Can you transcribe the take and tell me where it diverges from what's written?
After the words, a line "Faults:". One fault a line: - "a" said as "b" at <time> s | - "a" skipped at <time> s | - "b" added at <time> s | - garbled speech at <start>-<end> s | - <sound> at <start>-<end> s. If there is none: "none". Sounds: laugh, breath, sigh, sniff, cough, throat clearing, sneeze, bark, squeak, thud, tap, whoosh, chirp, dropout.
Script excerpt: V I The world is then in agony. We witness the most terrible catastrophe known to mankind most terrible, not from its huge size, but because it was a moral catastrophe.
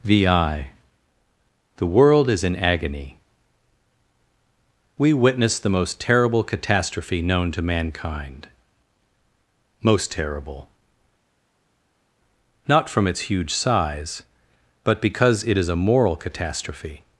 V I The world is in agony. We witness the most terrible catastrophe known to mankind most terrible, not from its huge size, but because it is a moral catastrophe.
Faults:
- "then" skipped at 2.4 s
- "was" said as "is" at 15.6 s